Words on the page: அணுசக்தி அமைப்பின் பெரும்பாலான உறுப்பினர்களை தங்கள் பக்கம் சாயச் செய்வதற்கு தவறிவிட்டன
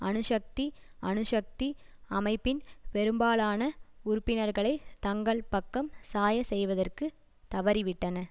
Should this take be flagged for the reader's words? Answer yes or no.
yes